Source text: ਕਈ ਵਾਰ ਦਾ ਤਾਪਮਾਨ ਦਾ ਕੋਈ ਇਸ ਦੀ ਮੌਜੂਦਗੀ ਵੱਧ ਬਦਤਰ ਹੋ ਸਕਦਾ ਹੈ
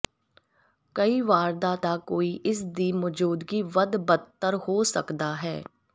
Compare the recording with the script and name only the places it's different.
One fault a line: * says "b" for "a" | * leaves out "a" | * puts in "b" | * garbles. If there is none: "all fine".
* leaves out "ਤਾਪਮਾਨ"